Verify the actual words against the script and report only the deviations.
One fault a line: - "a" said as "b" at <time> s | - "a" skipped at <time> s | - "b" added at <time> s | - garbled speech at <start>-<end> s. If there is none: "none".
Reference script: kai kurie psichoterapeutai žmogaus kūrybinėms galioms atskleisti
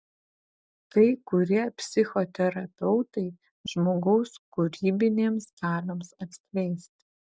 none